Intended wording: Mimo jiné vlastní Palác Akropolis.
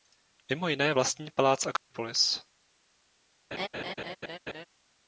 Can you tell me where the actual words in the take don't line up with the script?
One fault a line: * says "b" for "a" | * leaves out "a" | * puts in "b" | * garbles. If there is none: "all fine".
all fine